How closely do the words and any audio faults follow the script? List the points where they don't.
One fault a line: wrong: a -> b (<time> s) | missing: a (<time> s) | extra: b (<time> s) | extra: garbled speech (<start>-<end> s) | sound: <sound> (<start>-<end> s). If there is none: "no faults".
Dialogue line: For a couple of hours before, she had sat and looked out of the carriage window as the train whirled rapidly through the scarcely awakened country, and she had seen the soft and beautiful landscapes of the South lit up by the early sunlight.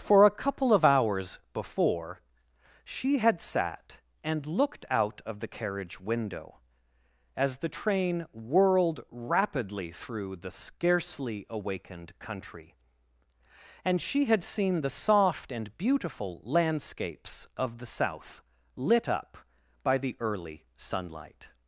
no faults